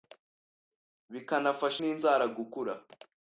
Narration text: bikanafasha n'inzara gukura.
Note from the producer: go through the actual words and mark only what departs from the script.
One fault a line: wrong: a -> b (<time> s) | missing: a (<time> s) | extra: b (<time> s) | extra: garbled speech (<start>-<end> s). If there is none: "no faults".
no faults